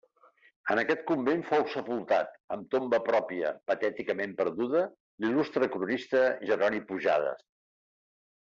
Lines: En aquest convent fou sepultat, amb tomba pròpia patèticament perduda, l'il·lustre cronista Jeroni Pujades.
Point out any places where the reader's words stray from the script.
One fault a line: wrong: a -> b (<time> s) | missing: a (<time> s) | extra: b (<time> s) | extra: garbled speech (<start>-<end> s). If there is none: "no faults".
no faults